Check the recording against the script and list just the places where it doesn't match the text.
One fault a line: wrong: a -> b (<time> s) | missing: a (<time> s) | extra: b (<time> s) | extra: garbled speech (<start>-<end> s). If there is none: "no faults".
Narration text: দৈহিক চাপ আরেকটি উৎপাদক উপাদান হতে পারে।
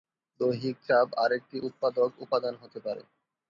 no faults